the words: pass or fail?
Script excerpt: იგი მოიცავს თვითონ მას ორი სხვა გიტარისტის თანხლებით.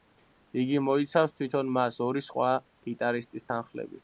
pass